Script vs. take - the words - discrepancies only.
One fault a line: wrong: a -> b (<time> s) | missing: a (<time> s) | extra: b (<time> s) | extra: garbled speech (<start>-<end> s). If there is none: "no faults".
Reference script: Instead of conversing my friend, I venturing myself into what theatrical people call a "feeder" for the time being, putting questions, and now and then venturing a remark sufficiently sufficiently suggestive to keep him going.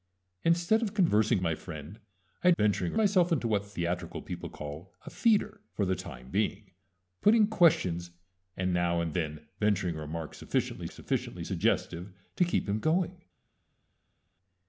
no faults